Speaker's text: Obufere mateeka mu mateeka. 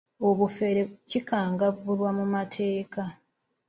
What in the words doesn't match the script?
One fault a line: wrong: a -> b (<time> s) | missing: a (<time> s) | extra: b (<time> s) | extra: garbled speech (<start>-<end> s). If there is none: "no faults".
wrong: mateeka -> kikangavvulwa (1.1 s)